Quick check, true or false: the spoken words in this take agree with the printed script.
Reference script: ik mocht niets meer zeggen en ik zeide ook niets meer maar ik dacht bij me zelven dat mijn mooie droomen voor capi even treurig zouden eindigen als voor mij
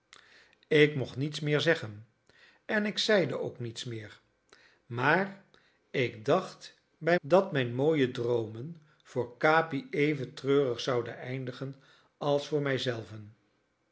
false